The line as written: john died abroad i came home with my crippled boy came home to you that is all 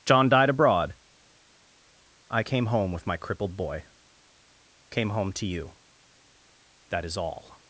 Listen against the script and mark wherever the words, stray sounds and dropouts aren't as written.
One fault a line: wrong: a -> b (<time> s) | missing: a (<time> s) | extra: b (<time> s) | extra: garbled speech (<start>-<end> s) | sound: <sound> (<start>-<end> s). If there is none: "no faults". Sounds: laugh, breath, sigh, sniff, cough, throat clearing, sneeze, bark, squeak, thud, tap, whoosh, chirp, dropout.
no faults